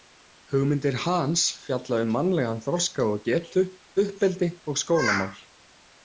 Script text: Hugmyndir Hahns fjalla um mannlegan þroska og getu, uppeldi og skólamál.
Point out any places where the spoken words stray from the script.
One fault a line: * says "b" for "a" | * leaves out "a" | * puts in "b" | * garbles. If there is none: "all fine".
all fine